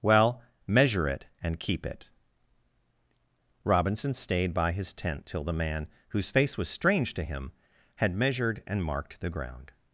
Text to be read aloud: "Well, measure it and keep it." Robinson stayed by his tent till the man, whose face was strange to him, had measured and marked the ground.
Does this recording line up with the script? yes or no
yes